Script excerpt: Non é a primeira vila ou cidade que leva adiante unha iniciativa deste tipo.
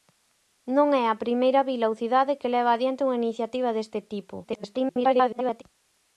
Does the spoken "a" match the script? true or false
true